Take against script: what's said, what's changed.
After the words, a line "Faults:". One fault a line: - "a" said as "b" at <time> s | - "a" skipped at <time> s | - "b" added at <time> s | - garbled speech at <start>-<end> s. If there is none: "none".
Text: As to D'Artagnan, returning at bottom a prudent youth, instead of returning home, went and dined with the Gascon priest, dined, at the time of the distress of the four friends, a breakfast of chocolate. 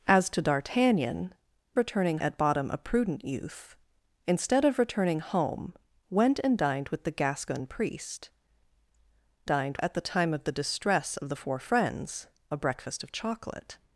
As to D'Artagnan, returning at bottom a prudent youth, instead of returning home, went and dined with the Gascon priest, dined, at the time of the distress of the four friends, a breakfast of chocolate.
Faults:
none